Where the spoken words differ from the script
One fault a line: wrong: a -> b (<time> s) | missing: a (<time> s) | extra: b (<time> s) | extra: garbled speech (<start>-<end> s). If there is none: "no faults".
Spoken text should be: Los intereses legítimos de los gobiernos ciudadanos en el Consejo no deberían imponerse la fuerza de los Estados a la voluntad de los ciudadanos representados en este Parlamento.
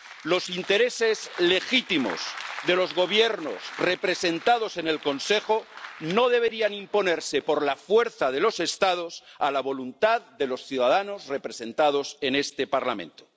wrong: ciudadanos -> representados (3.8 s)
extra: por (7.4 s)